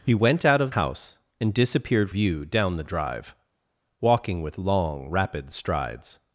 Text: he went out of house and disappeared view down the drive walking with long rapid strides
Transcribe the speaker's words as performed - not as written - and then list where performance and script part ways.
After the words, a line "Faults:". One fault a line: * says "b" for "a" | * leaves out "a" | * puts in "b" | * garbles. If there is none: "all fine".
he went out of house and disappeared view down the drive walking with long rapid strides
Faults:
all fine